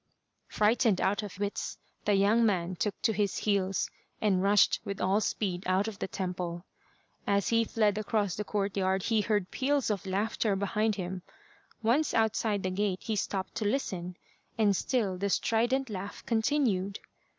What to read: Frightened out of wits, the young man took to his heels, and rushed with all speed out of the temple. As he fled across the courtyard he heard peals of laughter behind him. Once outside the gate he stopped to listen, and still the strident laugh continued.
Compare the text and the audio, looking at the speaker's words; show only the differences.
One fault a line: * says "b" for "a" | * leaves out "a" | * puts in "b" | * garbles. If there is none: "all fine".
all fine